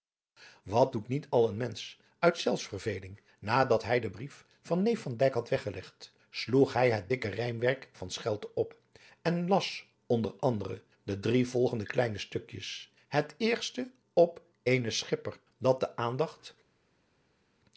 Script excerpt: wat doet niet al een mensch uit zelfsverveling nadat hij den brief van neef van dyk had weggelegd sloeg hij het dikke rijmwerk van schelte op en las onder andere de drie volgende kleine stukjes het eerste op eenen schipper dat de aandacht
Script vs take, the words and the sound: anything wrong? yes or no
no